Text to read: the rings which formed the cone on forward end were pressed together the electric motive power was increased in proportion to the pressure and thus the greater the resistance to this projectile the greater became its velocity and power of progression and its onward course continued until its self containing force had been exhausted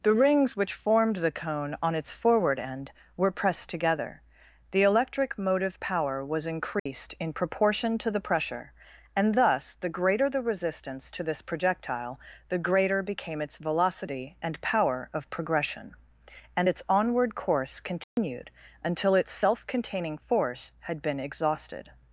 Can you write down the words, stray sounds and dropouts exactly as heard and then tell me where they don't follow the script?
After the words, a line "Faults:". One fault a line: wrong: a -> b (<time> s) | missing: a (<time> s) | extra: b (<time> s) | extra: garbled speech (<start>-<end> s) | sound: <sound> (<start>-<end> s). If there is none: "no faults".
the rings which formed the cone on its forward end were pressed together the electric motive power was increased in proportion to the pressure and thus the greater the resistance to this projectile the greater became its velocity and power of progression and its onward course continued until its self containing force had been exhausted
Faults:
extra: its (1.9 s)
sound: dropout (6.8-6.9 s)
sound: dropout (18.0-18.2 s)